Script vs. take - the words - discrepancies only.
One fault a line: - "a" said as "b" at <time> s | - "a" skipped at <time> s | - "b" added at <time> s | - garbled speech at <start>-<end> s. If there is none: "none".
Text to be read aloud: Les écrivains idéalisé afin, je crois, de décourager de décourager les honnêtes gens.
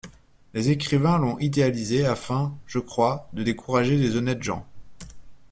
- "l'ont" added at 1.2 s
- "de décourager" skipped at 4.0 s